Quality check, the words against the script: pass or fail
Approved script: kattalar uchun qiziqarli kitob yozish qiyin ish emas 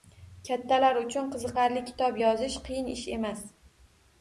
pass